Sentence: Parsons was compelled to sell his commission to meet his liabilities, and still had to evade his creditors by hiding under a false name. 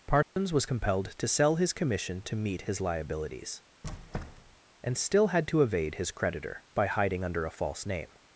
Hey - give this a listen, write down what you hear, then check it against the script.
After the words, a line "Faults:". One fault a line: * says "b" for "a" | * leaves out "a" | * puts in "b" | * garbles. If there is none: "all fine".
Parsons was compelled to sell his commission to meet his liabilities, and still had to evade his creditor by hiding under a false name.
Faults:
* says "creditor" for "creditors"